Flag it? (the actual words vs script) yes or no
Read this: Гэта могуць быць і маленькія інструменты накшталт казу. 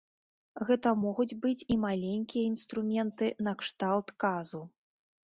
no